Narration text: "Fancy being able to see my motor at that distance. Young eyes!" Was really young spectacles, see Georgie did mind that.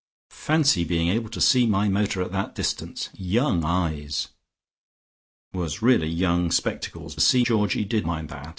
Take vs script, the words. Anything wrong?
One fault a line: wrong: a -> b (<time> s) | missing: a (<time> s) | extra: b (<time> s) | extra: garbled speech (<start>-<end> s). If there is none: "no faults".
no faults